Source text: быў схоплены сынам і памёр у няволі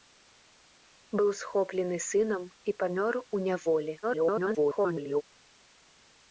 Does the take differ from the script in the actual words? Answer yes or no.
yes